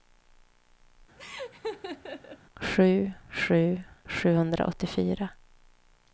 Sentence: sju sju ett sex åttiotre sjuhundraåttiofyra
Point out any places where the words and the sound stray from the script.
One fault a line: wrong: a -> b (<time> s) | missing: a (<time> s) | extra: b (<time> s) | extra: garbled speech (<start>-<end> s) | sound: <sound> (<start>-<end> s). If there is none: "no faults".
sound: laugh (1.2-2.4 s)
missing: ett sex åttiotre (3.8 s)